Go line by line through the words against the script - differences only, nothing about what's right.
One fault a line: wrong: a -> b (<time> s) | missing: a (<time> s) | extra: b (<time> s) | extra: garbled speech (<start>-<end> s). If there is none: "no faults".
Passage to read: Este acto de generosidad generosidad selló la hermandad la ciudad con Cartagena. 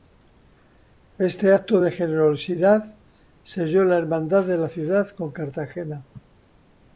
missing: generosidad (3.0 s)
extra: de (4.4 s)